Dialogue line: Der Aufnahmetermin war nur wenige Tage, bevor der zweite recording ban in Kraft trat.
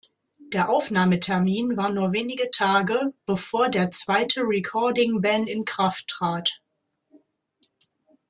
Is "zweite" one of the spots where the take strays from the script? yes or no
no